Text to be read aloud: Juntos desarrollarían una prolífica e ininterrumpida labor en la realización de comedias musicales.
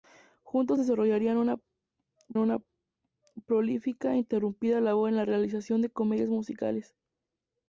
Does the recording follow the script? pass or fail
fail